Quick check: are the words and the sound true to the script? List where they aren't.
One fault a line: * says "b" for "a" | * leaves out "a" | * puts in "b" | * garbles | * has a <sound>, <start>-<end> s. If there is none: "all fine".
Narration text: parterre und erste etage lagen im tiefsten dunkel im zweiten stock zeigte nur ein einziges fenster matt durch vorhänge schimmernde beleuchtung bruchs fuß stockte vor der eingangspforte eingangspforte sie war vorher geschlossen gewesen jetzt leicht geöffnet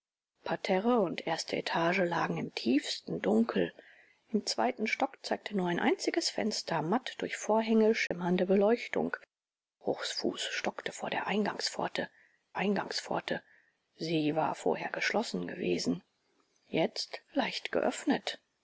* has a dropout, 8.1-8.1 s